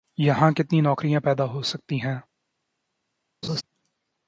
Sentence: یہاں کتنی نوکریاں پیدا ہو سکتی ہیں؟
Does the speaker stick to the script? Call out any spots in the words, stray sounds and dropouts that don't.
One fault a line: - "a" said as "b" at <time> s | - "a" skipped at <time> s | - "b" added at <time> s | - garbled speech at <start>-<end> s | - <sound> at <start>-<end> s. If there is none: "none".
- laugh at 3.4-3.6 s